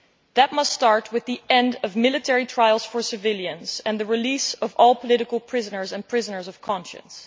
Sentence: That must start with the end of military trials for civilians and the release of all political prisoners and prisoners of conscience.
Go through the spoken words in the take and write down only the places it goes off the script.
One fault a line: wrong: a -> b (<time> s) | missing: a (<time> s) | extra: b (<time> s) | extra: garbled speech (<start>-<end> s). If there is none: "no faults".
no faults